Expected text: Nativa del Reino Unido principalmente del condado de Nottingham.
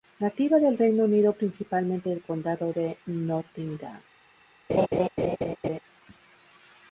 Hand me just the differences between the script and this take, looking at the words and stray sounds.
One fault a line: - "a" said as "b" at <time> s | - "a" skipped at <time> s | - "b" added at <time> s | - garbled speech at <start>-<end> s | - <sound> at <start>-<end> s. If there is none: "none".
- laugh at 4.7-5.8 s